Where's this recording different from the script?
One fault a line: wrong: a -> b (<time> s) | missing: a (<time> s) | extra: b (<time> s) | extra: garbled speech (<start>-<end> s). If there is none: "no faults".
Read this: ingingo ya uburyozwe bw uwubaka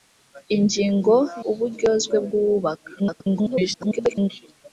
missing: ya (1.1 s)
extra: garbled speech (3.0-4.3 s)